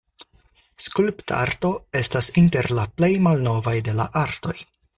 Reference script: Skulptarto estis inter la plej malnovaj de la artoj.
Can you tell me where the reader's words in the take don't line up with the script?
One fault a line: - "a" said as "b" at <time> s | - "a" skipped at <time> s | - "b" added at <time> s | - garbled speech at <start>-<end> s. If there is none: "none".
- "estis" said as "estas" at 2.0 s